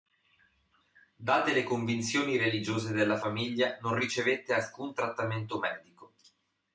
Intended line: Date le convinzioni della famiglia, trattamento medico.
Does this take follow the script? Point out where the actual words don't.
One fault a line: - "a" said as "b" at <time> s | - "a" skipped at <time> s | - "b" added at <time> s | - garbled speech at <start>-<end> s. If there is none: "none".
- "religiose" added at 2.4 s
- "non ricevette alcun" added at 3.8 s